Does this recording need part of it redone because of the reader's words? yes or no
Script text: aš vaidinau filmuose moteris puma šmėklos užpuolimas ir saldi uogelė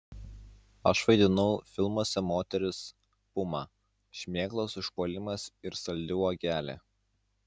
no